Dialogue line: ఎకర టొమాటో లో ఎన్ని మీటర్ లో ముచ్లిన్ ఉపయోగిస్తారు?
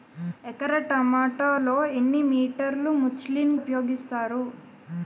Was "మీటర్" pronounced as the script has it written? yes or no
yes